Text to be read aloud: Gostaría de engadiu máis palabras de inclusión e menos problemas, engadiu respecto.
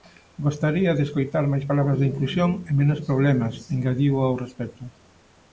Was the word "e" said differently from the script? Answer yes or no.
no